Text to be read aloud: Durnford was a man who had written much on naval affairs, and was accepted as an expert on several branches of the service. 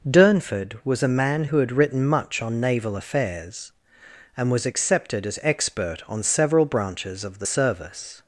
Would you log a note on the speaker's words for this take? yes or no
yes